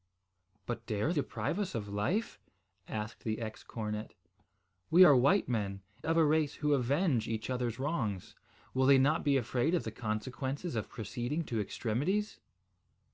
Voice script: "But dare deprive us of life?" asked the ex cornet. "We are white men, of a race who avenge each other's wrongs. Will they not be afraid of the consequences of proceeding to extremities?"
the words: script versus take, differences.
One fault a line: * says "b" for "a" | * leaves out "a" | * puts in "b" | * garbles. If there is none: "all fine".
all fine